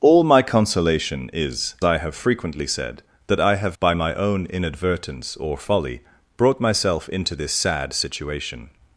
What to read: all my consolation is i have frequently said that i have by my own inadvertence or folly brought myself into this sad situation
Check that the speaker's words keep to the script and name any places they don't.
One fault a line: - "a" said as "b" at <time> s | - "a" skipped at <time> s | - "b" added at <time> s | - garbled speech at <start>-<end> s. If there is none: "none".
none